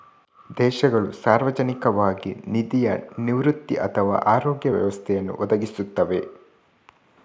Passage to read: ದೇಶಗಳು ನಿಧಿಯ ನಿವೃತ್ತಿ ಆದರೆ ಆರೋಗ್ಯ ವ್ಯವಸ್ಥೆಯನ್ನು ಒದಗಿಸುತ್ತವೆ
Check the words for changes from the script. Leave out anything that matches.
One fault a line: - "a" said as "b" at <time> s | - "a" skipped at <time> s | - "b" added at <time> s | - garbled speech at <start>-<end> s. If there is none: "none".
- "ಸಾರ್ವಜನಿಕವಾಗಿ" added at 1.2 s
- "ಆದರೆ" said as "ಅಥವಾ" at 3.8 s